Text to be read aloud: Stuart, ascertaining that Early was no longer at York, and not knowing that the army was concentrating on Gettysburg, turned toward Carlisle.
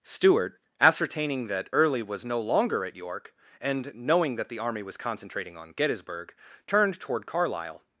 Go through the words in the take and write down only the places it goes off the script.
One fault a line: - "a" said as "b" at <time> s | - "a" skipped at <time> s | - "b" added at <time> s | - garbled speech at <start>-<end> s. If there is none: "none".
- "not" skipped at 3.9 s